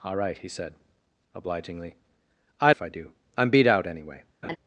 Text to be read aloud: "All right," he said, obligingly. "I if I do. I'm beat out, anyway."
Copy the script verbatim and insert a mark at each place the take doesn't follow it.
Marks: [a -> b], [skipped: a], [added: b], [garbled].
"All right," he said, obligingly. "I if I do. I'm beat out, anyway."